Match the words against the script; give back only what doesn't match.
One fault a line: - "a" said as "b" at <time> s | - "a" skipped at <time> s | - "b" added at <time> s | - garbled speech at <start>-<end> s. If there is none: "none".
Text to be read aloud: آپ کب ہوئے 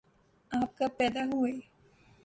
- "پیدا" added at 1.0 s